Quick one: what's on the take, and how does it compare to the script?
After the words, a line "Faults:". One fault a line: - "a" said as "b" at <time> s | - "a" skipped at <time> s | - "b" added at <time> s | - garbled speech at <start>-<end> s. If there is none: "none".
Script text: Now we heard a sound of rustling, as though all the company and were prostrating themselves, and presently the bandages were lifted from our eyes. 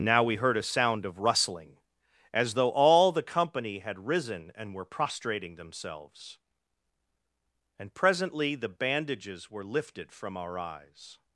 Now we heard a sound of rustling, as though all the company had risen and were prostrating themselves, and presently the bandages were lifted from our eyes.
Faults:
- "had risen" added at 3.8 s